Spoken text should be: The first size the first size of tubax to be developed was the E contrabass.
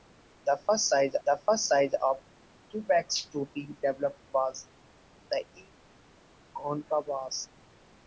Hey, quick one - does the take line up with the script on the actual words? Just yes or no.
yes